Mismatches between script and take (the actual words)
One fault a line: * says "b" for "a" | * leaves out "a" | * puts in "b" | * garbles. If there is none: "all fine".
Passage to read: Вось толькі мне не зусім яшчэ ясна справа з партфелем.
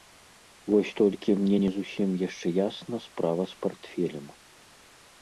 all fine